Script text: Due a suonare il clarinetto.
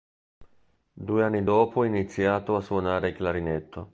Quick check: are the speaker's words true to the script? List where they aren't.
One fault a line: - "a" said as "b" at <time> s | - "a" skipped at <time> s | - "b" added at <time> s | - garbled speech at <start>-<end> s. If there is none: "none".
- "anni dopo iniziato" added at 1.2 s